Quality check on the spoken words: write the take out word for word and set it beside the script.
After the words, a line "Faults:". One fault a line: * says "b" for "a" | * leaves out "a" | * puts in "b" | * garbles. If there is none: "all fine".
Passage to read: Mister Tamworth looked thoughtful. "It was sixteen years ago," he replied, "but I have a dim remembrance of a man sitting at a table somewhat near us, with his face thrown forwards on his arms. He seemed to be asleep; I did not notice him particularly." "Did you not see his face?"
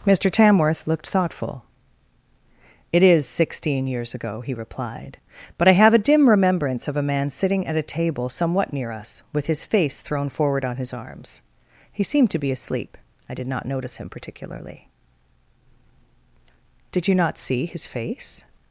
Mister Tamworth looked thoughtful. "It is sixteen years ago," he replied, "but I have a dim remembrance of a man sitting at a table somewhat near us, with his face thrown forward on his arms. He seemed to be asleep; I did not notice him particularly." "Did you not see his face?"
Faults:
* says "is" for "was"
* says "forward" for "forwards"